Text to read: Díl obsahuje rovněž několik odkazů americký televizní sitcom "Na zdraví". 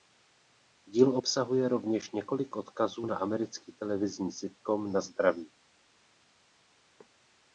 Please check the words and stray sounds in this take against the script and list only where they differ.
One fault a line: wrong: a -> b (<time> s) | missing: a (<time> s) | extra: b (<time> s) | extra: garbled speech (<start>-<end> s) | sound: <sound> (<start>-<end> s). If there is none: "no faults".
extra: na (3.0 s)